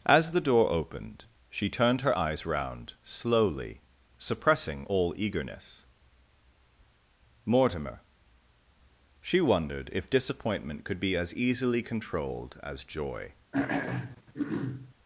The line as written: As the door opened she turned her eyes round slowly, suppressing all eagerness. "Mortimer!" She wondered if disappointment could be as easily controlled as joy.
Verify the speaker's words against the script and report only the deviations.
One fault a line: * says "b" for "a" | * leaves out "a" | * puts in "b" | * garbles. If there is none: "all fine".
all fine